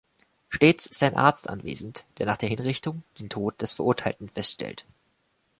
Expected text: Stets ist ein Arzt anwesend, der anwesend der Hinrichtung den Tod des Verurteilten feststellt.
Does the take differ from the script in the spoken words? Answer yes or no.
yes